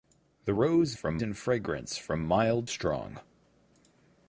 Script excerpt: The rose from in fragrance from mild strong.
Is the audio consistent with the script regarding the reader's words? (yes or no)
yes